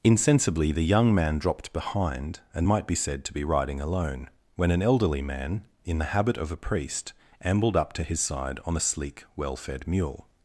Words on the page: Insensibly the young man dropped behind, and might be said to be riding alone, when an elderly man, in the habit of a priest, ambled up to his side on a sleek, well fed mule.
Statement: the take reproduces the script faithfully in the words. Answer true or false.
true